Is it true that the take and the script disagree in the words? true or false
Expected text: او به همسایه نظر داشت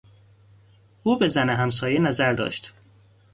true